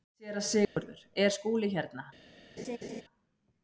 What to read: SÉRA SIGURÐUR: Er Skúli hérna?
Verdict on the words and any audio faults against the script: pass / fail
fail